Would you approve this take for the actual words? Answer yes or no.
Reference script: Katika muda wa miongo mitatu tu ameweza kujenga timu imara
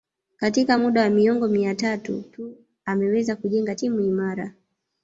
yes